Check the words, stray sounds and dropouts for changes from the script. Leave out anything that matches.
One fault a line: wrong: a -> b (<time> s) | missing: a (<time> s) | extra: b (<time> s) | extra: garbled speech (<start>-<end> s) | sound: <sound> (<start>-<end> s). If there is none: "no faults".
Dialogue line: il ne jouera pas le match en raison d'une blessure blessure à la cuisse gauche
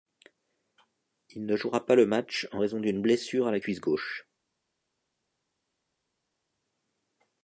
missing: blessure (3.5 s)